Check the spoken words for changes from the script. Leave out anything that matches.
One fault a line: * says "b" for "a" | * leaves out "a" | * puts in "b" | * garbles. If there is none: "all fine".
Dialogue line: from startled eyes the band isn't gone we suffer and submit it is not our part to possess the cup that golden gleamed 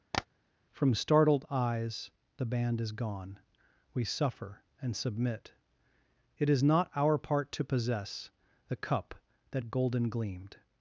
* says "is" for "isn't"